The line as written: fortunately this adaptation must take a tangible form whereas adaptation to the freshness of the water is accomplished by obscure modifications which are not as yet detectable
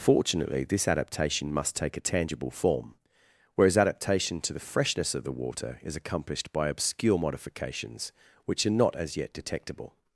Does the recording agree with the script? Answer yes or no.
yes